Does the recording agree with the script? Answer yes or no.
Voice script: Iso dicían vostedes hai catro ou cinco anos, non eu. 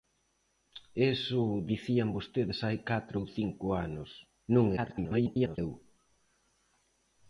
no